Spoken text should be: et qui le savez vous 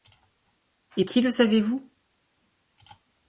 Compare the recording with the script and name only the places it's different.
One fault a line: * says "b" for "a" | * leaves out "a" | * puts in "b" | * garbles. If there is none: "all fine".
all fine